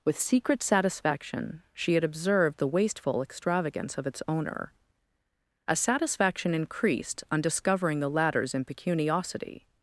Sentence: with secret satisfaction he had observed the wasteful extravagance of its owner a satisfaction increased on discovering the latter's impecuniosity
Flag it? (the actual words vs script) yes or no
yes